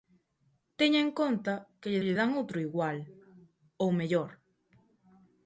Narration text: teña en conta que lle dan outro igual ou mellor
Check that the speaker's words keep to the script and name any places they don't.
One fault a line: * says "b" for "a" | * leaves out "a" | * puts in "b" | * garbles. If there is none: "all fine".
* puts in "lle"